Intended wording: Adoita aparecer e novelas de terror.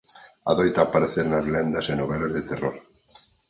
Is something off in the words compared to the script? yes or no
yes